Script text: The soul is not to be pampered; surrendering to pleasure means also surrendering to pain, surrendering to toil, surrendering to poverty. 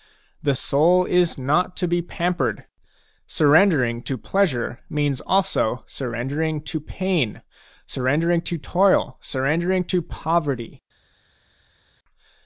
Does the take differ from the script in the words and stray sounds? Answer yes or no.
no